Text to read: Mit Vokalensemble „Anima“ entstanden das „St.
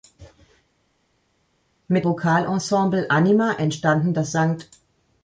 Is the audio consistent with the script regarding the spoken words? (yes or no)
yes